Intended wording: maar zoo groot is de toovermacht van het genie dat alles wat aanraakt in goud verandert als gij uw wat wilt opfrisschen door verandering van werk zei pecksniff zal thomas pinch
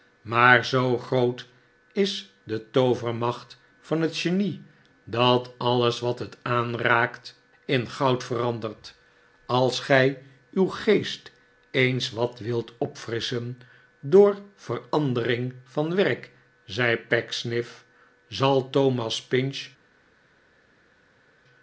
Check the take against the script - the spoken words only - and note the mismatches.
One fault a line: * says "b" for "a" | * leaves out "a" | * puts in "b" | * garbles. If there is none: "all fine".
* puts in "het"
* puts in "geest eens"